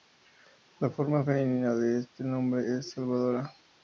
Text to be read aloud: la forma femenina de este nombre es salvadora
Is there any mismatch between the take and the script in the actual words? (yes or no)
no